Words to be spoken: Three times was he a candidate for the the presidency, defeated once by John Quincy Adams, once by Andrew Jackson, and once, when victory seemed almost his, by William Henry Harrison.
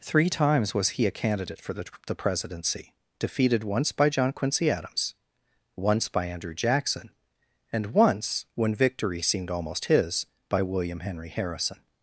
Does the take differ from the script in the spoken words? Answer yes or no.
no